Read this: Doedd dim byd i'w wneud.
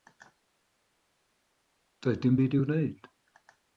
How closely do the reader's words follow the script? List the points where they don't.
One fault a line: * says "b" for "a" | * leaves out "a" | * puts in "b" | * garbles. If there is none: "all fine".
all fine